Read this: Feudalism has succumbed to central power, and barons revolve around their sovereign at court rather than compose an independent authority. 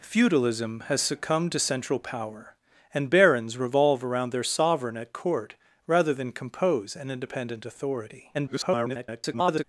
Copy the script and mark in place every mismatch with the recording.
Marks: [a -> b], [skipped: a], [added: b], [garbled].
Feudalism has succumbed to central power, and barons revolve around their sovereign at court rather than compose an independent authority. [garbled]